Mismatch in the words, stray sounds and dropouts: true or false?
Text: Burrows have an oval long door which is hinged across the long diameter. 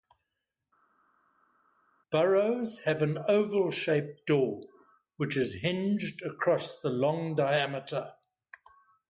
true